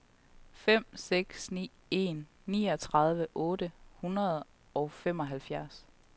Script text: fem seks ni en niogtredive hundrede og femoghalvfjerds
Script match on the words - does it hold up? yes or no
no